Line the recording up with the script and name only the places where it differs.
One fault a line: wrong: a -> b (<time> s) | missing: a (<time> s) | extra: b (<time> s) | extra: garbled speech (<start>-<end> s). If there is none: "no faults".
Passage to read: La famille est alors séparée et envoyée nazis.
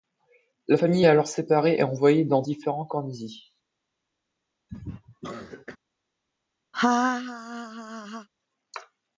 extra: dans différents camps (2.2 s)